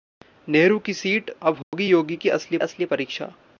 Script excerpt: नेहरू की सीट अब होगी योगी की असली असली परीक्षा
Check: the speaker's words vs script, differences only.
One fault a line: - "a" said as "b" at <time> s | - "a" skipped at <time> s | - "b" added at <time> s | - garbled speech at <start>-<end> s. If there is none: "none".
none